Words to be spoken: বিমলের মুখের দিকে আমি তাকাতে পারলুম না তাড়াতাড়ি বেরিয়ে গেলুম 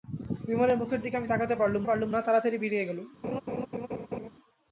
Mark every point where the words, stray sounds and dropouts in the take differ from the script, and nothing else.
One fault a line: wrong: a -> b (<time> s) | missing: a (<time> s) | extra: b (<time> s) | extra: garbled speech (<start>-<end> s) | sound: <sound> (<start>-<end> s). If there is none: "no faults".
extra: পারলুম (1.8 s)
sound: laugh (3.2-4.3 s)